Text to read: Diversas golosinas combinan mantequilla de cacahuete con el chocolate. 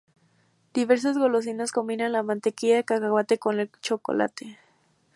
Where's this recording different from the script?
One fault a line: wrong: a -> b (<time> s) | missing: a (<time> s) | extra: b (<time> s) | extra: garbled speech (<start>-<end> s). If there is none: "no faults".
extra: la (2.1 s)